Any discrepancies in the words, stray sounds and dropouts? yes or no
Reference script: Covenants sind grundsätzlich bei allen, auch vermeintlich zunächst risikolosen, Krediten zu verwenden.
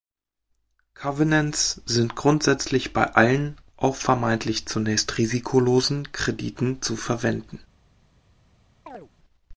yes